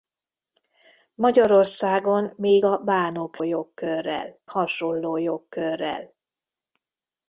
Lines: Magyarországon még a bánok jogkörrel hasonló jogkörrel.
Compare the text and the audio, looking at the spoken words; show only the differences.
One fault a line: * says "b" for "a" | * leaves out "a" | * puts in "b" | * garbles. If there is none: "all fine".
all fine